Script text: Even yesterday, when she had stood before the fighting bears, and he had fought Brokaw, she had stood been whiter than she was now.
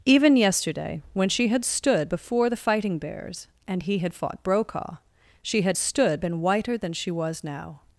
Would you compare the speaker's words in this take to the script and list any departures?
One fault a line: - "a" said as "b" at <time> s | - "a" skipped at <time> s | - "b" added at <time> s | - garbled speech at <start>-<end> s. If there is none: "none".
none